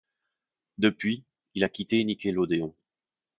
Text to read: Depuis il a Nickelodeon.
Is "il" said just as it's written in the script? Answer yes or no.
yes